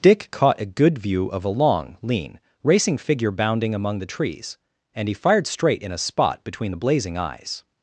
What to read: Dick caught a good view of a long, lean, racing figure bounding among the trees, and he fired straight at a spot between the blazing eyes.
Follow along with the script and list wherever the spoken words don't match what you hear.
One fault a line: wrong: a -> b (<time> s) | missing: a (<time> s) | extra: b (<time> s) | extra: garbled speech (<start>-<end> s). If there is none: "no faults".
wrong: at -> in (5.8 s)